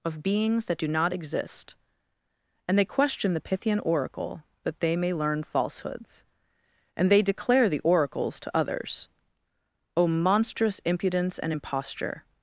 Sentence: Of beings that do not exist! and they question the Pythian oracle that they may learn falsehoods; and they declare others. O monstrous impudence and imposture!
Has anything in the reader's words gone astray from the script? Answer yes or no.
yes